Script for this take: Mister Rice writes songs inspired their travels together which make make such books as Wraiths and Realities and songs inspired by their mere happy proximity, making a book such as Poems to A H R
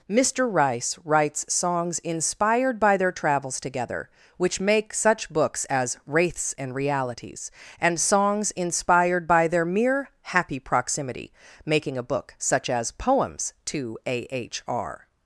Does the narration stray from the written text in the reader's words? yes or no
yes